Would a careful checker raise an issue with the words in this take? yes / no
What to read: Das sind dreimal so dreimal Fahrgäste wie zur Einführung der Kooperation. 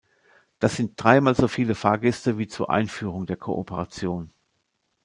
yes